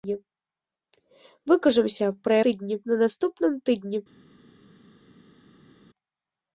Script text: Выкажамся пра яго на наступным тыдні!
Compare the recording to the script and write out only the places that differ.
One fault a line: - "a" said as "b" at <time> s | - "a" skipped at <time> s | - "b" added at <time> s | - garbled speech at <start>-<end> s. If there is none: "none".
- "яго" said as "тыдні" at 2.5 s